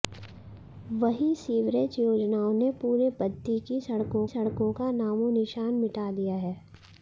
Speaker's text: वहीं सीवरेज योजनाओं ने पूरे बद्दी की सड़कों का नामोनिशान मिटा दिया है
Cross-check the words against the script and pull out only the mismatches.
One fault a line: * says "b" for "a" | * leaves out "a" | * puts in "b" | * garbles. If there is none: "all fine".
* puts in "सड़कों"